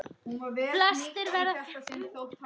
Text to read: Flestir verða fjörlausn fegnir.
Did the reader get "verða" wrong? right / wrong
right